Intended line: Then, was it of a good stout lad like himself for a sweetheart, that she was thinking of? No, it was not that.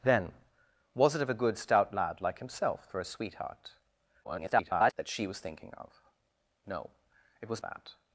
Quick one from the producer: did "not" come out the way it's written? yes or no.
no